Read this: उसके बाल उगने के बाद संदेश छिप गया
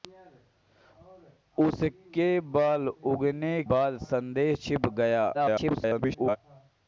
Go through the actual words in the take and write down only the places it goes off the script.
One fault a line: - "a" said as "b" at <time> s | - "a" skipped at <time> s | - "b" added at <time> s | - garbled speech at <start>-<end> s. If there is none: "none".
- "के" skipped at 3.6 s
- garbled speech at 5.3-6.4 s